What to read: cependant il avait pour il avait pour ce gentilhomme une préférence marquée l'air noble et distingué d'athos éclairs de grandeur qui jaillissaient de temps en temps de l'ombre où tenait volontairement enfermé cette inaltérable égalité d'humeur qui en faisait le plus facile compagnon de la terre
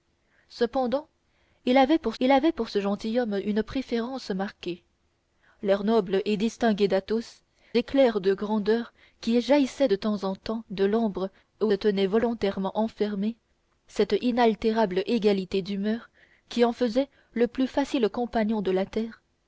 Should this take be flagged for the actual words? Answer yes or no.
no